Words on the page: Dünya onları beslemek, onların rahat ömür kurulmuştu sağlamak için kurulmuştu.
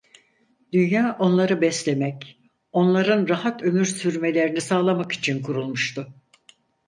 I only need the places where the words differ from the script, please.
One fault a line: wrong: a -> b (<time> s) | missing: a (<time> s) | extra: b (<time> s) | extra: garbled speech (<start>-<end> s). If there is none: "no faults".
wrong: kurulmuştu -> sürmelerini (3.9 s)